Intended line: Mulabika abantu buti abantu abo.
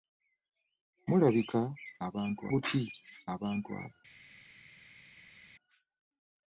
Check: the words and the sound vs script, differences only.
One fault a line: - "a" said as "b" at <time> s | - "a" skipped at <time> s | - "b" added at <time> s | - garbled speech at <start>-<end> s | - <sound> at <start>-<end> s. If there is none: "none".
none